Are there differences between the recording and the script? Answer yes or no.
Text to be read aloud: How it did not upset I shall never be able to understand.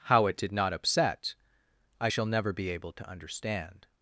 no